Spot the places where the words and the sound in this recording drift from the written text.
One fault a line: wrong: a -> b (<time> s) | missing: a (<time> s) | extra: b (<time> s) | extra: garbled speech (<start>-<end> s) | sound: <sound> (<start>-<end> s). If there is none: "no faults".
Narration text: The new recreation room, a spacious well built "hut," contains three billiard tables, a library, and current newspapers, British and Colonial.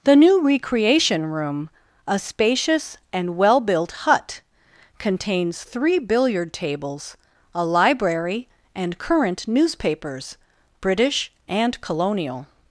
extra: and (3.1 s)